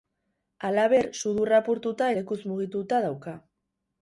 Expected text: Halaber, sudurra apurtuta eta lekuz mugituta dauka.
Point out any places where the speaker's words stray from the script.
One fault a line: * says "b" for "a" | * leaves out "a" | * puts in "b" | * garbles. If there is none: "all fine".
* leaves out "eta"